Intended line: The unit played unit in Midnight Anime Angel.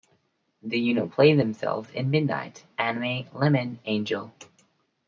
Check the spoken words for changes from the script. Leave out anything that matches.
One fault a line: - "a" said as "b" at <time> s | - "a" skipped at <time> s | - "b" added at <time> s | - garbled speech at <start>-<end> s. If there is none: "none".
- "unit" said as "themselves" at 1.4 s
- "Lemon" added at 3.3 s